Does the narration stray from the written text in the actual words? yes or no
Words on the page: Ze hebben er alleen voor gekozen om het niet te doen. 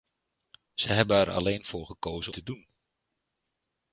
yes